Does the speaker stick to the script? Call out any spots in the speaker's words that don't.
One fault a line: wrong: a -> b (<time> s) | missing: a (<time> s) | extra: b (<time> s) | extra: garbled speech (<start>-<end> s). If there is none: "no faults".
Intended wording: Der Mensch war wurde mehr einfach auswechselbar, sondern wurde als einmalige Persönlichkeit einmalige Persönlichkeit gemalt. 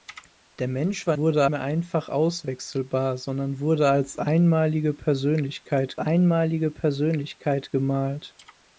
no faults